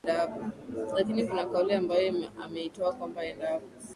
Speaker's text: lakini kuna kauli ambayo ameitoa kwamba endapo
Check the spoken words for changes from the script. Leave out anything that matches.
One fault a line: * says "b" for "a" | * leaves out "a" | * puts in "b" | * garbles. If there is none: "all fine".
all fine